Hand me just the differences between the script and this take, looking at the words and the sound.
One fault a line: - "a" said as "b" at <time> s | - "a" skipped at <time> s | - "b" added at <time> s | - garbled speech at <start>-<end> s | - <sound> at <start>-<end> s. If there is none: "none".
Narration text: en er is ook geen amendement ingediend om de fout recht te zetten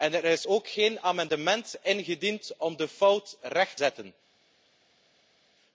- "te" skipped at 3.8 s